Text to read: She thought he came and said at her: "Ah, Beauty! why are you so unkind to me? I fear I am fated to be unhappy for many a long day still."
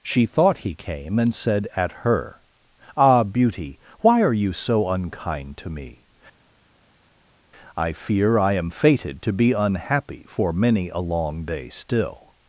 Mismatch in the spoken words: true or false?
false